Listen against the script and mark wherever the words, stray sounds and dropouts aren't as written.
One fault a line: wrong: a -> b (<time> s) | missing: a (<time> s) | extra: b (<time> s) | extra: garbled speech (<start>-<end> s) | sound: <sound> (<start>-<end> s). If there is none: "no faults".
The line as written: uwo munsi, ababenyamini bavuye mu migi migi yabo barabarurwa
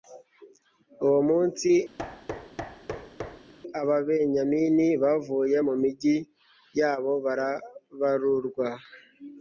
sound: thud (2.0-3.5 s)
missing: migi (6.2 s)